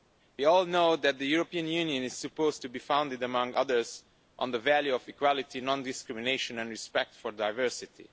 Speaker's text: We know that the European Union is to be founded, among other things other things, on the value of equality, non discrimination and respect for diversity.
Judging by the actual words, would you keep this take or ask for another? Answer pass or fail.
fail